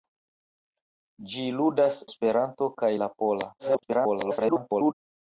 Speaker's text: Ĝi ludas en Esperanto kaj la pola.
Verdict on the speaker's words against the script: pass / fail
fail